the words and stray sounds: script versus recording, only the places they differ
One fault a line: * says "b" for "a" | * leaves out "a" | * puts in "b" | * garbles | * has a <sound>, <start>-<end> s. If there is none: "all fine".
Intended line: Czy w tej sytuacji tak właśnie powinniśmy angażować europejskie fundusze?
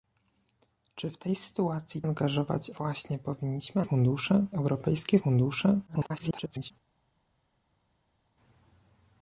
* says "angażować" for "tak"
* says "fundusze" for "angażować"
* garbles